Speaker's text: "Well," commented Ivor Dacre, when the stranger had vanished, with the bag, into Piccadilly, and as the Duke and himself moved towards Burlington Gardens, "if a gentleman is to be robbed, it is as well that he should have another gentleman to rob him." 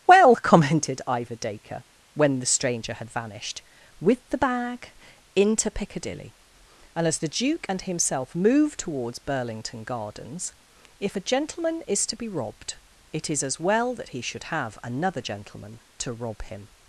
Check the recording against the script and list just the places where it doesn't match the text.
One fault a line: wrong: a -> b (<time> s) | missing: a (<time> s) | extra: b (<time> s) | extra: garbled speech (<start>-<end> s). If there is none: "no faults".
no faults